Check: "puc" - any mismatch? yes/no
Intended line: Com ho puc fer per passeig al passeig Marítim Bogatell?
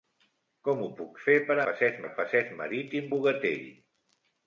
no